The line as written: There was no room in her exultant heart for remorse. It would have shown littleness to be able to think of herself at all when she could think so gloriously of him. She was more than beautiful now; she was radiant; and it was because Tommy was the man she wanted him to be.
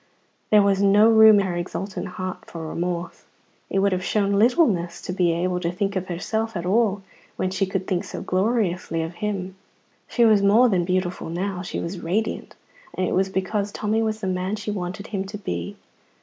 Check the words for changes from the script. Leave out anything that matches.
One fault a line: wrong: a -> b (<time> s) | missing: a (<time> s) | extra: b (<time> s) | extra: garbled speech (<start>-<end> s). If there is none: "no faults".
missing: in (1.4 s)